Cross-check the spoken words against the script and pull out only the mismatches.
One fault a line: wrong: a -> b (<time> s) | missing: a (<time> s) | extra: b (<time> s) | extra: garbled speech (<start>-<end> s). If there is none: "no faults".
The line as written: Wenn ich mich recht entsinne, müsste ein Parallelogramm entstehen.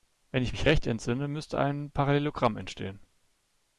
no faults